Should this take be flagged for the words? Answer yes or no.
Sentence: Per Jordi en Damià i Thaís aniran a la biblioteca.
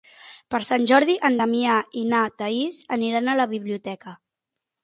yes